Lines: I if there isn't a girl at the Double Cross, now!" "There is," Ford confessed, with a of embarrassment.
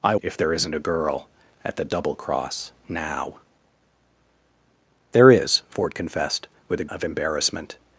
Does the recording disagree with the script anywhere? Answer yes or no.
no